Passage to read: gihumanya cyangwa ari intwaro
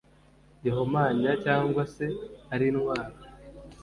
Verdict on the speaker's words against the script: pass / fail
fail